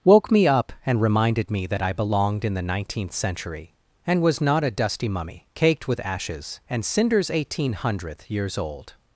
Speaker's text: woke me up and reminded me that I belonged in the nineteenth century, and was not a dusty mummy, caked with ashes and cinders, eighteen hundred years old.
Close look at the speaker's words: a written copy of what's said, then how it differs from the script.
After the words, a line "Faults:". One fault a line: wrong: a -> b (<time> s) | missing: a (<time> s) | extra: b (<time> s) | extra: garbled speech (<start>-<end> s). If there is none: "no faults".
woke me up and reminded me that I belonged in the nineteenth century, and was not a dusty mummy, caked with ashes and cinders, eighteen hundredth years old.
Faults:
wrong: hundred -> hundredth (7.7 s)